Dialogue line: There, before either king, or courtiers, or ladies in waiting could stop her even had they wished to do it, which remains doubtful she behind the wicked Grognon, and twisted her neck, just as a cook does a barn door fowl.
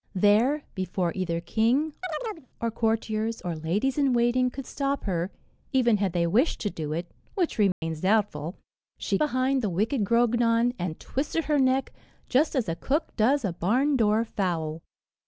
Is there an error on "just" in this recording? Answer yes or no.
no